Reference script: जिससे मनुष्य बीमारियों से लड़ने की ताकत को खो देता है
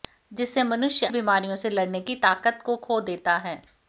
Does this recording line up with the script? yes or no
yes